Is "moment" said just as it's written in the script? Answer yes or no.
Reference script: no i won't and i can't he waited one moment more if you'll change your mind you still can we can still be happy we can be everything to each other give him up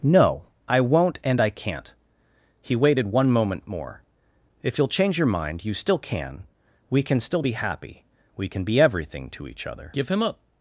yes